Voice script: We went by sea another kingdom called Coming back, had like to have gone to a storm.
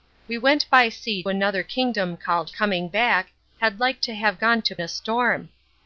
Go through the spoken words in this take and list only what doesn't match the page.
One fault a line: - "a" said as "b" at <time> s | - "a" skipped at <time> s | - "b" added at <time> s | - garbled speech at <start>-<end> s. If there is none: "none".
none